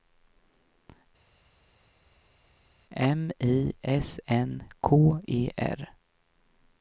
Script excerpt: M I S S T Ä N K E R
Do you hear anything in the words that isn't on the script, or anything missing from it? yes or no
yes